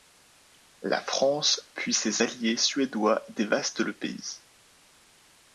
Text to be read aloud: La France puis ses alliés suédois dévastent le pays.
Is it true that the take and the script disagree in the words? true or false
false